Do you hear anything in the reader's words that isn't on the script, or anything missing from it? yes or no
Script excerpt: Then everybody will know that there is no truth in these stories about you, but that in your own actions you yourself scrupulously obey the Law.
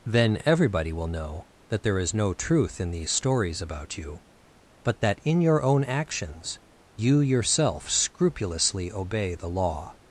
no